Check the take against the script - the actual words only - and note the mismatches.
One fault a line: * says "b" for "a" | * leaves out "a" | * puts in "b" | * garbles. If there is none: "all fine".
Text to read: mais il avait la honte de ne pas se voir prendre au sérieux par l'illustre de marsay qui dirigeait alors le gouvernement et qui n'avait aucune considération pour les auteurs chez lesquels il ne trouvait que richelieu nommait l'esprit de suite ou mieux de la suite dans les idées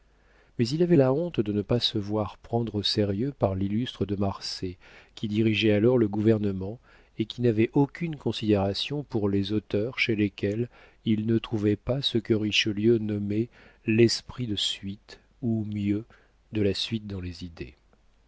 * puts in "pas ce"